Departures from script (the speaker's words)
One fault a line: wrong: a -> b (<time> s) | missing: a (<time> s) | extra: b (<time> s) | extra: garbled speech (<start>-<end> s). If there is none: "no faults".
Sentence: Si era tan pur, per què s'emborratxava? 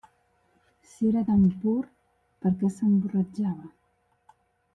no faults